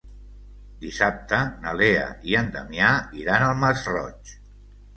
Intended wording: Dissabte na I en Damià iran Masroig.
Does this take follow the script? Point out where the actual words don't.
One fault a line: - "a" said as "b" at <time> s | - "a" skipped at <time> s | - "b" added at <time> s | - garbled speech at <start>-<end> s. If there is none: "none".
- "Lea" added at 1.8 s
- "al" added at 3.5 s